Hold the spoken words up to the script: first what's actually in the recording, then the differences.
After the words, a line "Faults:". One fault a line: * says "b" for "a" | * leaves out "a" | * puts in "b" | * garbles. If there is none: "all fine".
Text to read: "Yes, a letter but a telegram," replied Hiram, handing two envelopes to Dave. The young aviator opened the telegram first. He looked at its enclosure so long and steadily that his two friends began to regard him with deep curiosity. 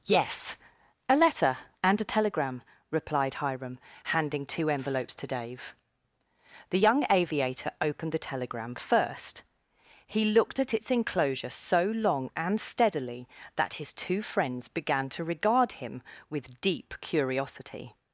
"Yes, a letter and a telegram," replied Hiram, handing two envelopes to Dave. The young aviator opened the telegram first. He looked at its enclosure so long and steadily that his two friends began to regard him with deep curiosity.
Faults:
* says "and" for "but"